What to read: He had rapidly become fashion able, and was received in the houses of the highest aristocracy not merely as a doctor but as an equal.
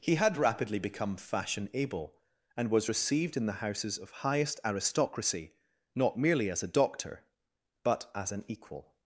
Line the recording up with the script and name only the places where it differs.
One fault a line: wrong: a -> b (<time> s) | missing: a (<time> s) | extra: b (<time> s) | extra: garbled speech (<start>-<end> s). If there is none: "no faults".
missing: the (4.1 s)